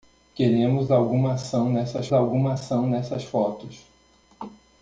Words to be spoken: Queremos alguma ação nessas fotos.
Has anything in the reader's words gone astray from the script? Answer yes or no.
yes